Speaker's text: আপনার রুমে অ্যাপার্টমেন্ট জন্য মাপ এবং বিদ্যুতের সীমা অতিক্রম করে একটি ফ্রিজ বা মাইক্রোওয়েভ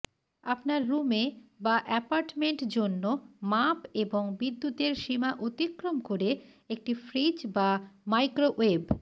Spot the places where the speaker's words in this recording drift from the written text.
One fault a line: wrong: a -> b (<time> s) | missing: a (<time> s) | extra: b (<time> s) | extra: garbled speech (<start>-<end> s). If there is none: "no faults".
extra: বা (1.6 s)